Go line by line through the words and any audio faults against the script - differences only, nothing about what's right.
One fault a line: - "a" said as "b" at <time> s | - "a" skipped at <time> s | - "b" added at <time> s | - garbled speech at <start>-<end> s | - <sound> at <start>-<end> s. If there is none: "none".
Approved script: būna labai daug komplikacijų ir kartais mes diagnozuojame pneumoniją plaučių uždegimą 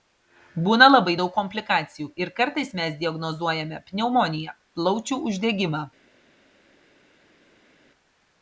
none